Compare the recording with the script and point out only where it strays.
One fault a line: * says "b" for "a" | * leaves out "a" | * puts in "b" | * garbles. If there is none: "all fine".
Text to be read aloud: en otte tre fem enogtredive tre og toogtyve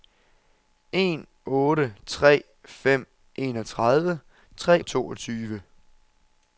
all fine